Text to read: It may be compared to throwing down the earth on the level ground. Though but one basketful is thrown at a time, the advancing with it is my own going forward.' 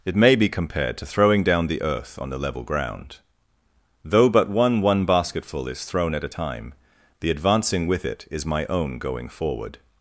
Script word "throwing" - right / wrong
right